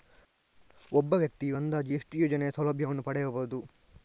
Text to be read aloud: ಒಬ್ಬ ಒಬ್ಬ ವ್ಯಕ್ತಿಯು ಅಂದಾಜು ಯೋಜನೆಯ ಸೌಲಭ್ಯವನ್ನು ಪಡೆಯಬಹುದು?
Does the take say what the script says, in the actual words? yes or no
no